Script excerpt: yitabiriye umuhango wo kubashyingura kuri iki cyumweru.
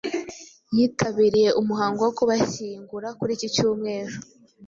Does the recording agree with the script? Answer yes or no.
yes